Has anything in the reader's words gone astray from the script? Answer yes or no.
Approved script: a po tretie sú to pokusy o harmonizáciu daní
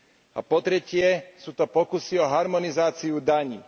no